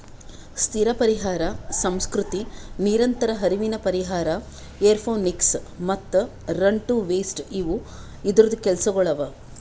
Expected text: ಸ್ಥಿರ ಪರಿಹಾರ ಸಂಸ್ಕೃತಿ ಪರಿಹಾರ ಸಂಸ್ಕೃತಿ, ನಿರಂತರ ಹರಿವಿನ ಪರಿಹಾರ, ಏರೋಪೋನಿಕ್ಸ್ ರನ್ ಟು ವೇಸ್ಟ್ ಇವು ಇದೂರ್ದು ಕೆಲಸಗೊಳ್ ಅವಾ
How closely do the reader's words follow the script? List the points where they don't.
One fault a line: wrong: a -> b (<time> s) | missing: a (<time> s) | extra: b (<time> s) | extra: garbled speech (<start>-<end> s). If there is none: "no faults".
missing: ಪರಿಹಾರ ಸಂಸ್ಕೃತಿ (2.4 s)
extra: ಮತ್ತ (5.9 s)